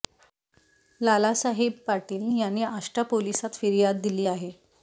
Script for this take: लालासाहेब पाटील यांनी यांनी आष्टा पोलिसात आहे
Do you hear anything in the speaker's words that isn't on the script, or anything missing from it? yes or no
yes